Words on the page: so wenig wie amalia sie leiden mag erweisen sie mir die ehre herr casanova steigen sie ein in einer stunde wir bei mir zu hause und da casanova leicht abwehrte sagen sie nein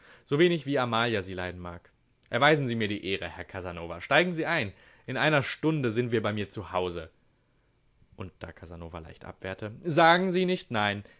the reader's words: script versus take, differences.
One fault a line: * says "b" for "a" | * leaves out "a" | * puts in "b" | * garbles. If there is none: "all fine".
* puts in "sind"
* puts in "nicht"